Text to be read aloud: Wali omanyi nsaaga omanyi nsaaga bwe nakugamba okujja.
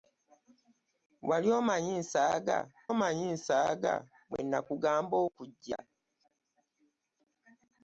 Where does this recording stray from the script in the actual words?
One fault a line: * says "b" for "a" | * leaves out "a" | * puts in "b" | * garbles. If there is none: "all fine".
all fine